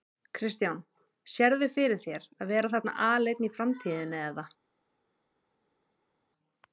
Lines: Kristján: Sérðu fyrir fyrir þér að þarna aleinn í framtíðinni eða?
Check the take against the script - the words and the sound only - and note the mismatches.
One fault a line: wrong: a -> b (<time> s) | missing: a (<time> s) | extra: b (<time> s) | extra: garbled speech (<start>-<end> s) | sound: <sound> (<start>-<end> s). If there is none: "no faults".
missing: fyrir (2.0 s)
extra: vera (2.5 s)